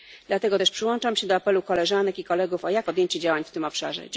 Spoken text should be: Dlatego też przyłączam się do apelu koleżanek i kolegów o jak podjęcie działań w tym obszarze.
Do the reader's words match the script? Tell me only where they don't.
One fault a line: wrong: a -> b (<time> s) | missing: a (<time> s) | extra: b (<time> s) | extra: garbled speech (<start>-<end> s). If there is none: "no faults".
no faults